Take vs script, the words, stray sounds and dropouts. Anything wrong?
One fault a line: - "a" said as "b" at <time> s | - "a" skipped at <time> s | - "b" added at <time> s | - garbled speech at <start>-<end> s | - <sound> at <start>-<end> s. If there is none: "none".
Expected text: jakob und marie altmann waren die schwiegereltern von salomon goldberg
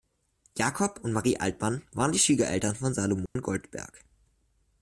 - dropout at 3.3-3.4 s